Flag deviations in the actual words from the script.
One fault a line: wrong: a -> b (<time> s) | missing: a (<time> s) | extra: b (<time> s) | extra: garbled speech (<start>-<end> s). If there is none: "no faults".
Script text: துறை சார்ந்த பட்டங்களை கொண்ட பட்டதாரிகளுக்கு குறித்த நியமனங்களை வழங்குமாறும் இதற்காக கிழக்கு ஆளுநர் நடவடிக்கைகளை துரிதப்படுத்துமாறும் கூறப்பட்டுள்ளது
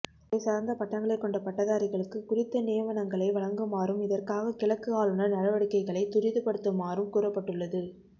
no faults